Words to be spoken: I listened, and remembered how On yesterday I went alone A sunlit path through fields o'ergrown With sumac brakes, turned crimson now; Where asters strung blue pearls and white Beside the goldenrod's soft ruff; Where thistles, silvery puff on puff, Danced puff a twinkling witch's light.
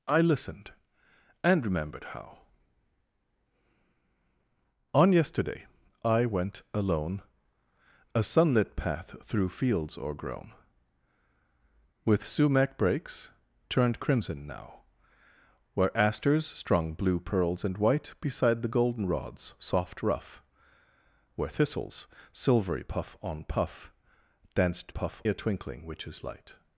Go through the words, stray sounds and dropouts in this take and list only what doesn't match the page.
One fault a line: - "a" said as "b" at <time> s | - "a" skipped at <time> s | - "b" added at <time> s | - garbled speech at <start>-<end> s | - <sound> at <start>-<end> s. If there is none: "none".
none